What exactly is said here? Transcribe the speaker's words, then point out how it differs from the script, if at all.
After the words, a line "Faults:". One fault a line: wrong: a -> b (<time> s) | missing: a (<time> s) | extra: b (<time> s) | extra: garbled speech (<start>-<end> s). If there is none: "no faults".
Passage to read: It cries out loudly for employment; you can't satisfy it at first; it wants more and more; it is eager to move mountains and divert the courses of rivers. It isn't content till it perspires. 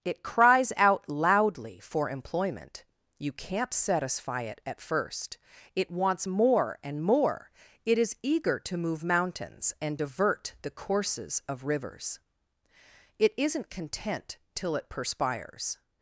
It cries out loudly for employment; you can't satisfy it at first; it wants more and more; it is eager to move mountains and divert the courses of rivers. It isn't content till it perspires.
Faults:
no faults